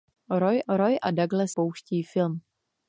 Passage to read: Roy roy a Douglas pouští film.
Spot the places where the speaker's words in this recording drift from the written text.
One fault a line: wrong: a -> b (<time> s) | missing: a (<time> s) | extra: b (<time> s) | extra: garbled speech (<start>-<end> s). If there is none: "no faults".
no faults